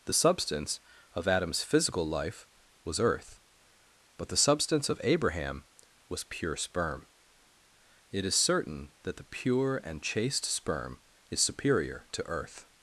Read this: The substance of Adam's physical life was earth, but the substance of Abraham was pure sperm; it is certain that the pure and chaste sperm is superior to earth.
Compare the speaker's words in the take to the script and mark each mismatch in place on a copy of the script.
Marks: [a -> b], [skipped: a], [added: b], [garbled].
The substance of Adam's physical life was earth, but the substance of Abraham was pure sperm; it is certain that the pure and chaste sperm is superior to earth.